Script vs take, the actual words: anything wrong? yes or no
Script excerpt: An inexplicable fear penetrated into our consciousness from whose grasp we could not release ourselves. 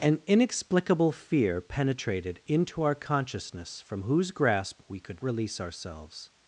yes